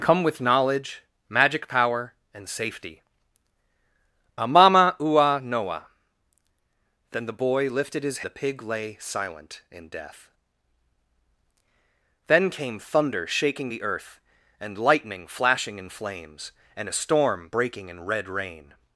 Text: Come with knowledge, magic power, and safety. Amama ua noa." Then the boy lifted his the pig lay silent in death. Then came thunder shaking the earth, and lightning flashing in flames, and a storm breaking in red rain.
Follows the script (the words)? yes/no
yes